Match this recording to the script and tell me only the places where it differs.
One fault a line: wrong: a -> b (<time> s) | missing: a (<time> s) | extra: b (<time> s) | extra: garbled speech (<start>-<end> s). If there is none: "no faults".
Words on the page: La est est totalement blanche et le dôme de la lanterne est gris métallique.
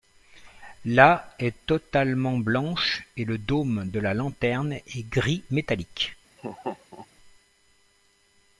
missing: est (1.5 s)